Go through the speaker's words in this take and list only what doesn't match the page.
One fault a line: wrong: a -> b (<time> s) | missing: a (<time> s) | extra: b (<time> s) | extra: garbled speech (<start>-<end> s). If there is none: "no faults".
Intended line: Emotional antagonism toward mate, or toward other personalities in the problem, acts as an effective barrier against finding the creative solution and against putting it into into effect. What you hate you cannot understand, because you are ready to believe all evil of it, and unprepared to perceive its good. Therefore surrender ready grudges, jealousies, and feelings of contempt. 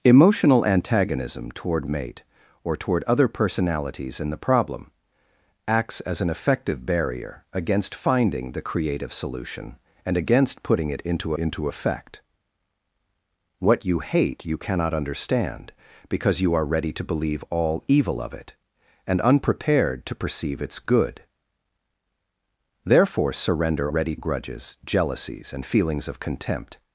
no faults